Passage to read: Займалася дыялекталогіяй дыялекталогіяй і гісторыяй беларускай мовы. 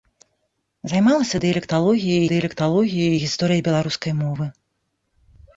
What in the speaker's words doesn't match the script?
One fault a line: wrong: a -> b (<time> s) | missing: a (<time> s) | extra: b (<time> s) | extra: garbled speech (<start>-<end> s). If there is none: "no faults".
no faults